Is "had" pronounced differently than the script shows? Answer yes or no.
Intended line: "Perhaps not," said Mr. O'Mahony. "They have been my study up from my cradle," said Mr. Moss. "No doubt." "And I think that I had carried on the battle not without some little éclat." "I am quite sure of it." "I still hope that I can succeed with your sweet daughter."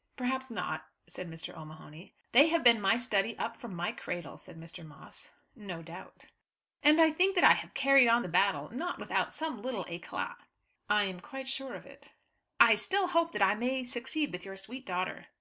yes